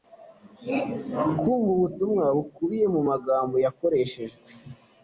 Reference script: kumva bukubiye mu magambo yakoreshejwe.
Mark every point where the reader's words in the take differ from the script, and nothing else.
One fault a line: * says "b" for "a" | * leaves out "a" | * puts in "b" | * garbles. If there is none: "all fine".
* puts in "ubutumwa"